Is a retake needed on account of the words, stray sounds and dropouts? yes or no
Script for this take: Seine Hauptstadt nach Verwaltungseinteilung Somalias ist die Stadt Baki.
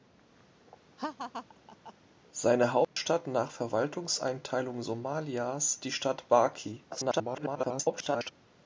yes